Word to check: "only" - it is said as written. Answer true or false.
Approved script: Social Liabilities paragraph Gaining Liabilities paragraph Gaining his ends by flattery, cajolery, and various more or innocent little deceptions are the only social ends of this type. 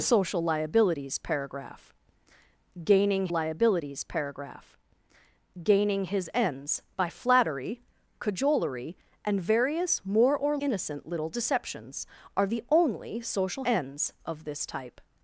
true